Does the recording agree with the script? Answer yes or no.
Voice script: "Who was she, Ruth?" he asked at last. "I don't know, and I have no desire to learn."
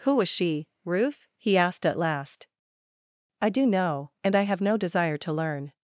no